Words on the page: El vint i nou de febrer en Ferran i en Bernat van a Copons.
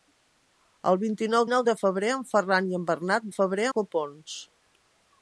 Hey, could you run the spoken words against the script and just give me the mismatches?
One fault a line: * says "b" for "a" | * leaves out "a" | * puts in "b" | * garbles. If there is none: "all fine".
* puts in "nou"
* says "febrer" for "van"